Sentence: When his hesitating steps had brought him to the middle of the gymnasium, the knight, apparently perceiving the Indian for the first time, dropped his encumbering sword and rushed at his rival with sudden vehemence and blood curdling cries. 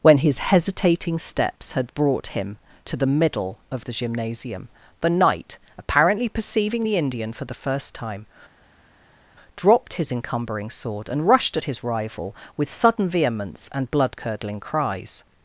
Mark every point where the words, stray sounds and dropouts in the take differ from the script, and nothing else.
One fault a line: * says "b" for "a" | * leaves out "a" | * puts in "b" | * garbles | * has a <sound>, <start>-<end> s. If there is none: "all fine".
all fine